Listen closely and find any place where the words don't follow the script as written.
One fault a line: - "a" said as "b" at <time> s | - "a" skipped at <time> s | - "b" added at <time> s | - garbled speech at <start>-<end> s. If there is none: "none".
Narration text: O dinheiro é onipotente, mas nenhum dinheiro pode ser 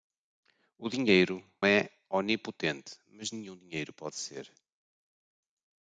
none